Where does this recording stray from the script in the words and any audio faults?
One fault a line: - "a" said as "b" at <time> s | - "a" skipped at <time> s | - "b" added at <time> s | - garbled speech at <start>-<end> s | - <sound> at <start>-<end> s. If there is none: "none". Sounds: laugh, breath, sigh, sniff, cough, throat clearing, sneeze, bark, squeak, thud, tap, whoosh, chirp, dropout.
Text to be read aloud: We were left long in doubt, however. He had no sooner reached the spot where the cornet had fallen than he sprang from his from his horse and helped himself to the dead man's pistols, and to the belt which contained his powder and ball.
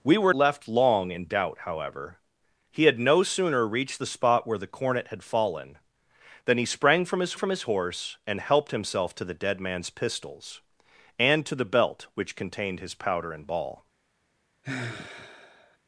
- sigh at 14.6-15.8 s